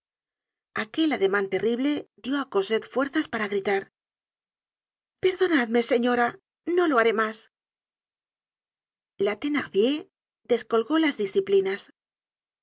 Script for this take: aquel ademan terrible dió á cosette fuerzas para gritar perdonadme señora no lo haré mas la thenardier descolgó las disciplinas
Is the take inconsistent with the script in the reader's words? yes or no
no